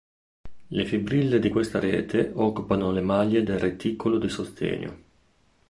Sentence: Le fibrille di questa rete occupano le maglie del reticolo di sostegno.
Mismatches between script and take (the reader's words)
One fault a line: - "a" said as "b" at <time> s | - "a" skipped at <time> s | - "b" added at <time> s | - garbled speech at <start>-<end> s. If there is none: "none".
none